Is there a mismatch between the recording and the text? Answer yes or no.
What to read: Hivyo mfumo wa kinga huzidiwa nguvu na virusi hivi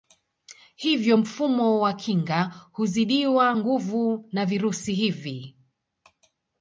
no